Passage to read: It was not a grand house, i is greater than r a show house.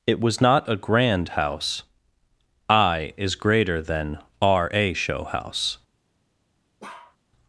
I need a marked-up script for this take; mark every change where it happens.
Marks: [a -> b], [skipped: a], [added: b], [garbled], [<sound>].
It was not a grand house, i is greater than r a show house. [bark]